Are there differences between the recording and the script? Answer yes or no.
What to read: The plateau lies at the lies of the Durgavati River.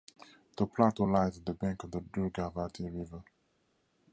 yes